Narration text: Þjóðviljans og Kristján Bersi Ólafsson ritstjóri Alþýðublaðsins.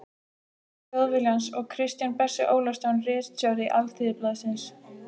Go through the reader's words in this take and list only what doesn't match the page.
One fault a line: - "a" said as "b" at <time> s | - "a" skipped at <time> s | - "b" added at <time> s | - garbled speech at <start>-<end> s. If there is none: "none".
none